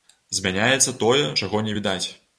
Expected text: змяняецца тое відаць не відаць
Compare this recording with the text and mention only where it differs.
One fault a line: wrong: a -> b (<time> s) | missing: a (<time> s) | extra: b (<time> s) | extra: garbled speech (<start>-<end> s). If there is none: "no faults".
wrong: відаць -> чаго (1.4 s)